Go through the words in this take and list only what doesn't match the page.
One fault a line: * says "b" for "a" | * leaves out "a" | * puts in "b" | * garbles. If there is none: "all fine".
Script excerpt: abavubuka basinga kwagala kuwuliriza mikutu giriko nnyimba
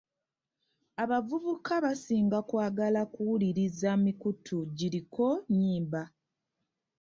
all fine